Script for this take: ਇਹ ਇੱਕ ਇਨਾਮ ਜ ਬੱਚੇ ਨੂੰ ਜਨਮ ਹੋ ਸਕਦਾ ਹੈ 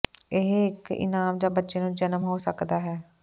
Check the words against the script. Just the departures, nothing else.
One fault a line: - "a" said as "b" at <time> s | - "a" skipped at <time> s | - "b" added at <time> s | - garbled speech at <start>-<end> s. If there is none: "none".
none